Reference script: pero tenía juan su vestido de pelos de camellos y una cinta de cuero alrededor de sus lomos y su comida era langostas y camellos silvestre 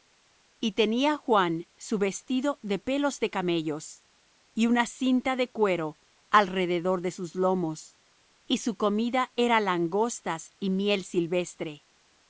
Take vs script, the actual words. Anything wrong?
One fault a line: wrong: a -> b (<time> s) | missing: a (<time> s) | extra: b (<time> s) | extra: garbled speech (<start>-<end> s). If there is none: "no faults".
wrong: pero -> y (0.6 s)
wrong: camellos -> miel (10.7 s)